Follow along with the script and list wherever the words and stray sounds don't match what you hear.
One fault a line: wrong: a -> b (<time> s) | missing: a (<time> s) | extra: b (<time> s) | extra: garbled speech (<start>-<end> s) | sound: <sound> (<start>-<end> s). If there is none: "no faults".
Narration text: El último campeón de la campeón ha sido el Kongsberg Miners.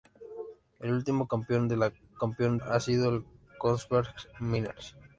no faults